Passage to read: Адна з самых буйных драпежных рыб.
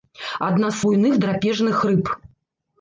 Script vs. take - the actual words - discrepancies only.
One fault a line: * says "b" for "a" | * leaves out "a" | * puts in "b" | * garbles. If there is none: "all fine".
* leaves out "самых"